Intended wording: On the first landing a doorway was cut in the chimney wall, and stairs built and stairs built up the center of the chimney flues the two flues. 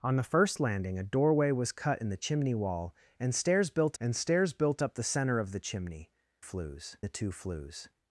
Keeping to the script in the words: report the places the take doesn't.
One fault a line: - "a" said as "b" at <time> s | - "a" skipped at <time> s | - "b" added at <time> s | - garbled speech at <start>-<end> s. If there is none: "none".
none